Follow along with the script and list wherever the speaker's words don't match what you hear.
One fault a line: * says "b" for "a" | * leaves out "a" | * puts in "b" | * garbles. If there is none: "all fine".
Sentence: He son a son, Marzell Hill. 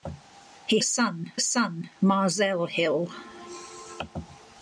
all fine